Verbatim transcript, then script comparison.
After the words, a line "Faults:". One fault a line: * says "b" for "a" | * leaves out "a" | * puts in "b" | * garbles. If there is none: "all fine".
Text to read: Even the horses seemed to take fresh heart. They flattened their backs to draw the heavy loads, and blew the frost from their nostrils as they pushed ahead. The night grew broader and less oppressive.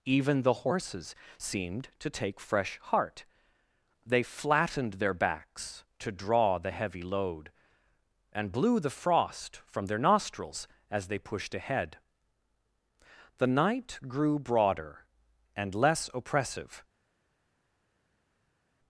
Even the horses seemed to take fresh heart. They flattened their backs to draw the heavy load, and blew the frost from their nostrils as they pushed ahead. The night grew broader and less oppressive.
Faults:
* says "load" for "loads"